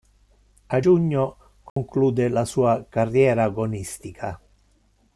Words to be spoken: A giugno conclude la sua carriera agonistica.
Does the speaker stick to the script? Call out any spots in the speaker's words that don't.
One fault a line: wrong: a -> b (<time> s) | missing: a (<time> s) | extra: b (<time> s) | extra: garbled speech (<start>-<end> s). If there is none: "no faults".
no faults